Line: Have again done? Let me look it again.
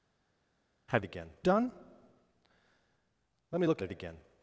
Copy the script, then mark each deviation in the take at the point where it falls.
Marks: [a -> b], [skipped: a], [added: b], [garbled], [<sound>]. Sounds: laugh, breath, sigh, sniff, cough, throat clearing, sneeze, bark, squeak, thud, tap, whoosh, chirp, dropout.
Have again done? Let me look it again.